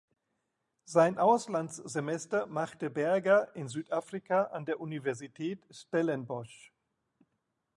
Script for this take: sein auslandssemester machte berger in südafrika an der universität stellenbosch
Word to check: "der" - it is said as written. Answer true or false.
true